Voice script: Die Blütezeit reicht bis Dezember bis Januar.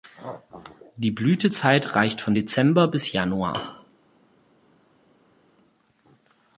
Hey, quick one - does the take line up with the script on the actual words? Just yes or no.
no